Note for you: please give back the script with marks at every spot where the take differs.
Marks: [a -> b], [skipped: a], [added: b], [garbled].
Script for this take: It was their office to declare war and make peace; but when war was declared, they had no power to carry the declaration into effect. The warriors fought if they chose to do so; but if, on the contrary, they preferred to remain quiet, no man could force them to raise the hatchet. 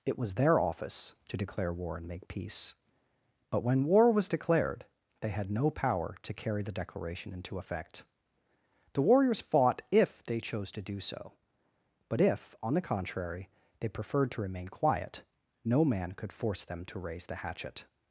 It was their office to declare war and make peace; but when war was declared, they had no power to carry the declaration into effect. The warriors fought if they chose to do so; but if, on the contrary, they preferred to remain quiet, no man could force them to raise the hatchet.